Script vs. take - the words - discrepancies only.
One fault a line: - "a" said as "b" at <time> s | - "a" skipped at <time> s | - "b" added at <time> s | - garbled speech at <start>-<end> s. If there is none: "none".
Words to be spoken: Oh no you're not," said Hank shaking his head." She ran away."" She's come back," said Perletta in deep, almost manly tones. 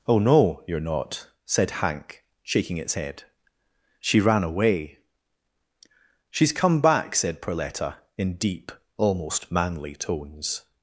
- "his" said as "its" at 2.8 s